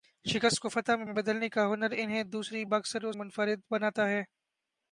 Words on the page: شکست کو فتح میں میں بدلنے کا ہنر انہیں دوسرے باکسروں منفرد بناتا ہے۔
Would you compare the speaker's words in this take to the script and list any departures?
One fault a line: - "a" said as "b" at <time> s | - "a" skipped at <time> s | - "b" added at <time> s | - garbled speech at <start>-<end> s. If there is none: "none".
none